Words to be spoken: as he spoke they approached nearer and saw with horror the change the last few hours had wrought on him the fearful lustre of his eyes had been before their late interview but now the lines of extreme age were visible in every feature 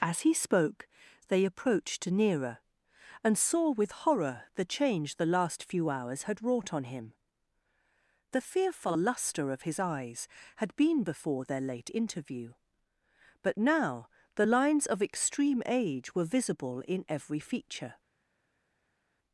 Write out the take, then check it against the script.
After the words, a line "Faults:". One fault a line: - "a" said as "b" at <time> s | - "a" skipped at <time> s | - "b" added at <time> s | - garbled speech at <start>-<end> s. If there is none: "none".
as he spoke they approached nearer and saw with horror the change the last few hours had wrought on him the fearful lustre of his eyes had been before their late interview but now the lines of extreme age were visible in every feature
Faults:
none